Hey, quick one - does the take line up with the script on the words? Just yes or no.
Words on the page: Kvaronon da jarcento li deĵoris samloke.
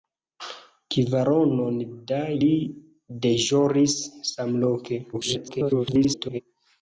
no